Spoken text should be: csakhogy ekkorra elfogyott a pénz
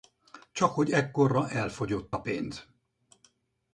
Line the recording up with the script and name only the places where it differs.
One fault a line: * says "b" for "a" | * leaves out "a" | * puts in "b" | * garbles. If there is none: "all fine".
all fine